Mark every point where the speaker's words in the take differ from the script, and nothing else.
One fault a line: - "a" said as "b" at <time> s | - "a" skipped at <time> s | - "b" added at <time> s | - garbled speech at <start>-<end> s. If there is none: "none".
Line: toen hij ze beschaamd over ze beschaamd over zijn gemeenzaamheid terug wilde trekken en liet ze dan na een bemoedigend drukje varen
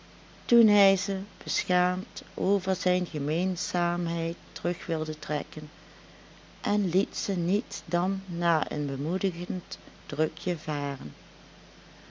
- "ze beschaamd over" skipped at 2.8 s
- "niet" added at 7.3 s